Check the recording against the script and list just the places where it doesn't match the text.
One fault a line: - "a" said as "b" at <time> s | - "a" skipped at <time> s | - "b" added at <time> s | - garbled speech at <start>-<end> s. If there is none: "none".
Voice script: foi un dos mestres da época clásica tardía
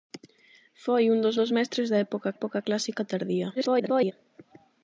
- "dos" added at 1.4 s
- "época" added at 2.4 s
- garbled speech at 3.6-4.1 s